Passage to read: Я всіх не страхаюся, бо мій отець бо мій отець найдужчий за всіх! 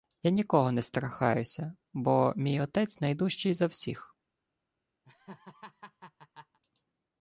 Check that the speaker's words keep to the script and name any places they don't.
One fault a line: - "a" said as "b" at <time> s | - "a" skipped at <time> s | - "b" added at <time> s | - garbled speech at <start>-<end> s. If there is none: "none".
- "всіх" said as "нікого" at 0.3 s
- "бо мій отець" skipped at 3.0 s